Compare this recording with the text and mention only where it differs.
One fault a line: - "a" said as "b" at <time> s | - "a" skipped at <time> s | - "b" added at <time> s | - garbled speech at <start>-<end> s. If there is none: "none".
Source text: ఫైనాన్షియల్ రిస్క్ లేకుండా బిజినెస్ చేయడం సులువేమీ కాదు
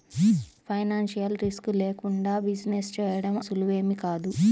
none